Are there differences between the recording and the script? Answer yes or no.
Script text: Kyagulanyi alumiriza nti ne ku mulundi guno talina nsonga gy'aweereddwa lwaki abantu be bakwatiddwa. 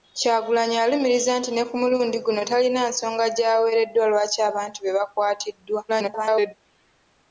yes